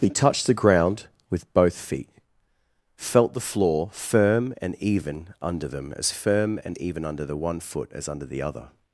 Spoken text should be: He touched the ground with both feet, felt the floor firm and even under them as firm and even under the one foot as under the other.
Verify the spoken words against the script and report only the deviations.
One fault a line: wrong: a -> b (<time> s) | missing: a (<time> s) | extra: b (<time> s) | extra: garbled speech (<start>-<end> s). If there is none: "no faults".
no faults